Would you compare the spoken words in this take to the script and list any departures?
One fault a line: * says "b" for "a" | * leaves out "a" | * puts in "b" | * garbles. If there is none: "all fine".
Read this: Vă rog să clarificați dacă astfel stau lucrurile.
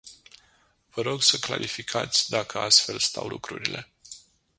all fine